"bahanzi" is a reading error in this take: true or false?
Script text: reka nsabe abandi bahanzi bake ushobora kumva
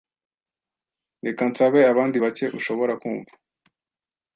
true